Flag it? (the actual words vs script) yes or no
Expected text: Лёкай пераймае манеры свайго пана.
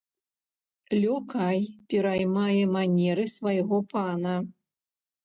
no